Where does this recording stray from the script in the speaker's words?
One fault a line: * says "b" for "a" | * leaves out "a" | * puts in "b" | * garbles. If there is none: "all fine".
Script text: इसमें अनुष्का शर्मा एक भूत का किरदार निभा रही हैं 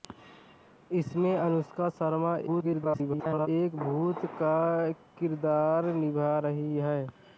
* garbles